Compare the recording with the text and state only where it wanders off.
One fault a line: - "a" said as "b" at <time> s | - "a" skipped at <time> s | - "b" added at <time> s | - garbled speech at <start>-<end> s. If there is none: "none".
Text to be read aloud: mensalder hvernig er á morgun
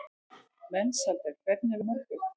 none